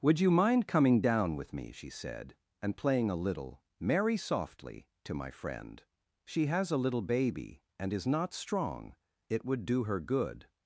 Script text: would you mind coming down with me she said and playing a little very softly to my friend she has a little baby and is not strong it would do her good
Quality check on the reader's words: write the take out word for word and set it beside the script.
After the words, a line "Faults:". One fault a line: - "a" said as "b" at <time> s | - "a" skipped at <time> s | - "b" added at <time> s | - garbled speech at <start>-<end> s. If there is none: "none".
would you mind coming down with me she said and playing a little merry softly to my friend she has a little baby and is not strong it would do her good
Faults:
- "very" said as "merry" at 3.8 s